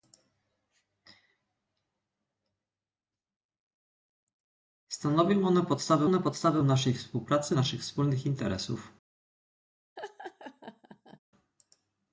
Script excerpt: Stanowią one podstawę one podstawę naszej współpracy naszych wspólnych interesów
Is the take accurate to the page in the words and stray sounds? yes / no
no